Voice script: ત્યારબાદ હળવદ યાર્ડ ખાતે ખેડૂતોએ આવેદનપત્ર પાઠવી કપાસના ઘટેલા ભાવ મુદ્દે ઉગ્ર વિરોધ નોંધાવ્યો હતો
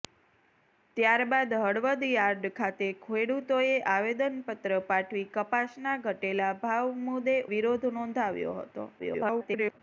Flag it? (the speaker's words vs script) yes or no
yes